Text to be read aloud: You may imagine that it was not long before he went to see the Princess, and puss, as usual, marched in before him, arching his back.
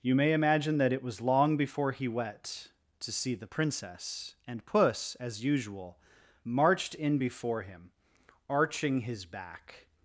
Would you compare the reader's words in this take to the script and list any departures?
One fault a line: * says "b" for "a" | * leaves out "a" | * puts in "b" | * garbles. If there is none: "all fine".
* leaves out "not"
* says "wet" for "went"